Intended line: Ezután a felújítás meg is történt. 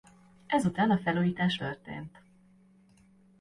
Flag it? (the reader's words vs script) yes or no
yes